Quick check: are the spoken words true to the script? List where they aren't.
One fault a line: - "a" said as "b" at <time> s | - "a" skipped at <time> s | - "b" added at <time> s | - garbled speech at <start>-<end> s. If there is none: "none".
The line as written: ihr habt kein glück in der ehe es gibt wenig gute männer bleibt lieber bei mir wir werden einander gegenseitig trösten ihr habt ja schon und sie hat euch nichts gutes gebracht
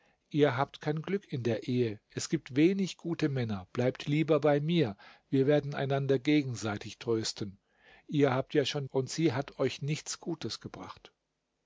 none